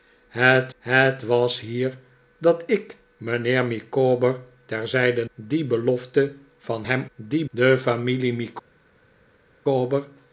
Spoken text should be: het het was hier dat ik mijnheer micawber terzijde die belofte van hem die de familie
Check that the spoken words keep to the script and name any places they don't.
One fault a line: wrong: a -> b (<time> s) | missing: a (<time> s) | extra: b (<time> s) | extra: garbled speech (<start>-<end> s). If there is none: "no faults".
no faults